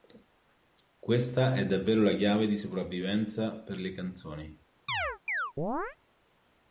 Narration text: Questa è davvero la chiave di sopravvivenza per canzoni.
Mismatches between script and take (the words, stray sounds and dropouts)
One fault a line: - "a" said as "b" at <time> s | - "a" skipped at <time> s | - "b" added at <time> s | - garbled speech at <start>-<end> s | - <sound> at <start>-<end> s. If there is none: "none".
- "le" added at 3.8 s
- chirp at 4.9-6.0 s